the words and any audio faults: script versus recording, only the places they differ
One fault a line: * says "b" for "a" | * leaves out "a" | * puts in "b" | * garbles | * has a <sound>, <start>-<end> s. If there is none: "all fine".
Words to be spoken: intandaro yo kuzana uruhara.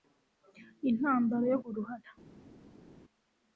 * leaves out "kuzana"